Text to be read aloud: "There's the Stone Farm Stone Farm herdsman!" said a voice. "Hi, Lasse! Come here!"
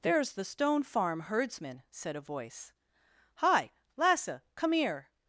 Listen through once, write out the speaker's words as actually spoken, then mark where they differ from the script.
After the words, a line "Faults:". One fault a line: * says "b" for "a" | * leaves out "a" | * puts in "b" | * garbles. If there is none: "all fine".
"There's the Stone Farm herdsman!" said a voice. "Hi, Lasse! Come here!"
Faults:
* leaves out "Stone Farm"